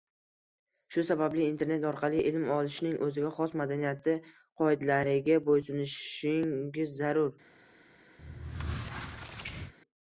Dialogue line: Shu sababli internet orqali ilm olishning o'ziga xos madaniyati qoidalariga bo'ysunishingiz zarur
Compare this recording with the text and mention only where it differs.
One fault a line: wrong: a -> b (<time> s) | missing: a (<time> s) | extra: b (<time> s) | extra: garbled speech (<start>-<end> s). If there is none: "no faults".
no faults